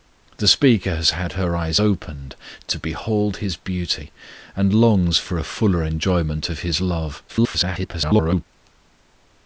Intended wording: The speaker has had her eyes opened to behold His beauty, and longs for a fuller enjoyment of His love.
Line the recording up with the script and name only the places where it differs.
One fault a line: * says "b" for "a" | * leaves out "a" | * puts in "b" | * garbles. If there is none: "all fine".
* garbles